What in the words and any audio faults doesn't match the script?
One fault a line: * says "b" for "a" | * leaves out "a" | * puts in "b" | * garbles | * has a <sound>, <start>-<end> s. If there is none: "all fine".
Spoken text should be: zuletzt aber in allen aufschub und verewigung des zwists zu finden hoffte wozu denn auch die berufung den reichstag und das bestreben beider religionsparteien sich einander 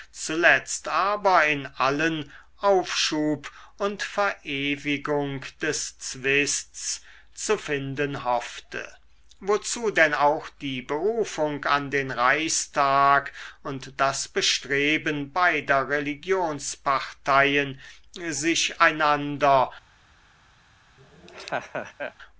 * puts in "an"
* has a laugh, 21.0-22.1 s